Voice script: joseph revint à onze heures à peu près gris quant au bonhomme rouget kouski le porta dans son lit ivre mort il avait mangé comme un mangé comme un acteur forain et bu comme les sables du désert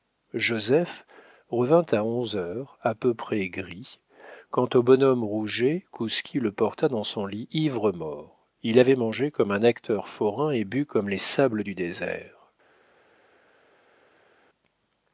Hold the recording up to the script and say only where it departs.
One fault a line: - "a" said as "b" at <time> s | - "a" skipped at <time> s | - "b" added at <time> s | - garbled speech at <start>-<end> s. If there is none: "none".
- "mangé comme un" skipped at 9.6 s